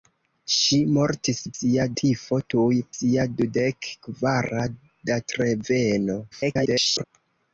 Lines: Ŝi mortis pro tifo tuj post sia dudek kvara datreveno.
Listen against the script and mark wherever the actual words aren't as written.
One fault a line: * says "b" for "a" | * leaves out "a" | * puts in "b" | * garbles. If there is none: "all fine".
* says "sia" for "pro"
* leaves out "post"
* garbles